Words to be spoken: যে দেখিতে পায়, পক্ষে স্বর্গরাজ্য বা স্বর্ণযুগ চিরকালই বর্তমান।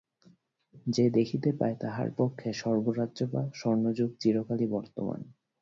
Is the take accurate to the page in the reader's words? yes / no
no